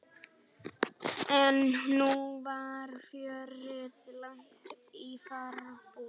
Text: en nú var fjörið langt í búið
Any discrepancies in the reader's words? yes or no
yes